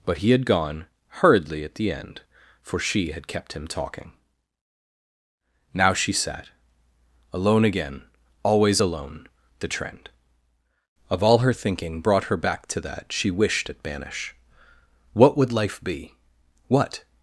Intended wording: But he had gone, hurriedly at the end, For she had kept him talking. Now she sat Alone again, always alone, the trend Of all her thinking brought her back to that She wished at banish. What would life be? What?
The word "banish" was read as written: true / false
true